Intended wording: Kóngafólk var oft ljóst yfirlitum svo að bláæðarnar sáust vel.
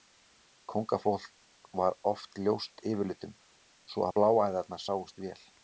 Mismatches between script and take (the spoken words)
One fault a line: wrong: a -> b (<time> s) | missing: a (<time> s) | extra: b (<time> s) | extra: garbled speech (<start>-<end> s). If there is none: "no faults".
no faults